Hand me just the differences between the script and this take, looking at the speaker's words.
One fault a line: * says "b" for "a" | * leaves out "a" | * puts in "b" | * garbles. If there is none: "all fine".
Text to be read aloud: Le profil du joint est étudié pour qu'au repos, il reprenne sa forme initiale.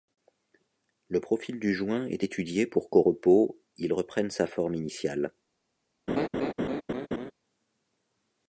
all fine